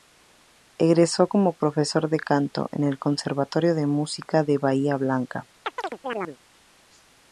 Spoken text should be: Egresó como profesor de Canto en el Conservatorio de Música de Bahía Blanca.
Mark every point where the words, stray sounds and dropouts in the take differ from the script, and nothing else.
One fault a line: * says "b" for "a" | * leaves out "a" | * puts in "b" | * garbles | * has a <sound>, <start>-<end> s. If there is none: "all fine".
* has a chirp, 5.6-6.4 s